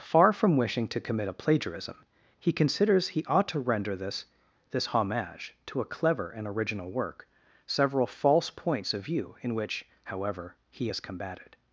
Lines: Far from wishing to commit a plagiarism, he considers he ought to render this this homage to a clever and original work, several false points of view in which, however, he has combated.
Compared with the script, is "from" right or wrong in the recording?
right